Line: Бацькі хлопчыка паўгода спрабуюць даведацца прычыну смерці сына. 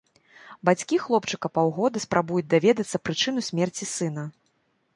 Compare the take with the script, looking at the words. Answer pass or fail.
pass